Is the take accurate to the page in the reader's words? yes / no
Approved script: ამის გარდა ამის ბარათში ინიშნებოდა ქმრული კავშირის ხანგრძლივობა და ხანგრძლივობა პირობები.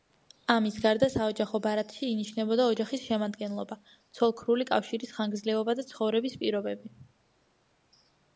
no